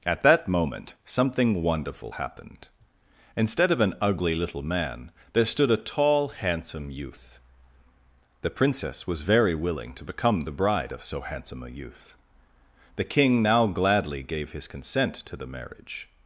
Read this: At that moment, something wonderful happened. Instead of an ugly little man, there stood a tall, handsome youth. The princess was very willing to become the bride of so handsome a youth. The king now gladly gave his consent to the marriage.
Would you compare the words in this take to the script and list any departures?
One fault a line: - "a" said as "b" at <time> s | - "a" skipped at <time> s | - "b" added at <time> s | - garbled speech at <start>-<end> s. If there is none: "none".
none